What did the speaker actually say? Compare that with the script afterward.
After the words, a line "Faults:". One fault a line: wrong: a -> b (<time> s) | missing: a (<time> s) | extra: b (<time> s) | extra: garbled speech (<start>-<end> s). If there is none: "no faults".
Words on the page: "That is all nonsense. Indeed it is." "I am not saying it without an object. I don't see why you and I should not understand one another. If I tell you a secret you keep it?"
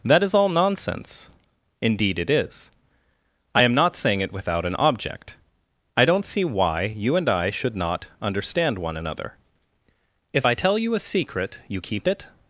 "That is all nonsense. Indeed it is." "I am not saying it without an object. I don't see why you and I should not understand one another. If I tell you a secret you keep it?"
Faults:
no faults